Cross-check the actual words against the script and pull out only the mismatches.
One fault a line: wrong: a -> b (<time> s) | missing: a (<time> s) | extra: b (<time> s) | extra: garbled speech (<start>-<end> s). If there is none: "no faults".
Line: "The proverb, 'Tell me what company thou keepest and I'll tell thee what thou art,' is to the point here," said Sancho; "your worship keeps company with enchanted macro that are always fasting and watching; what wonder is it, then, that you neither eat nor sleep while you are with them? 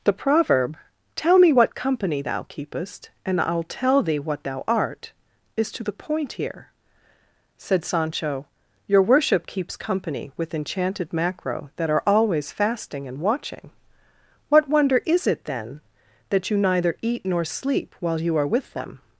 no faults